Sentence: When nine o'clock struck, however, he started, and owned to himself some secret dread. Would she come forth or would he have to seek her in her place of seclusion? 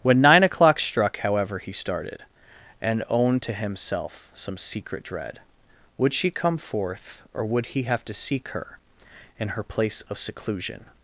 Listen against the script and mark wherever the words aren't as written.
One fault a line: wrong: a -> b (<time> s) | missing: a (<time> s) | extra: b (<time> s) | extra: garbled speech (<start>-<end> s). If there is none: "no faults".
no faults